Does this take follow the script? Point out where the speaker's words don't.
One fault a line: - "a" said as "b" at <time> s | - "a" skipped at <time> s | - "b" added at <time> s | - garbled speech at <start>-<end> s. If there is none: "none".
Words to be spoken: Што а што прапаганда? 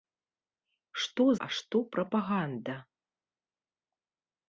none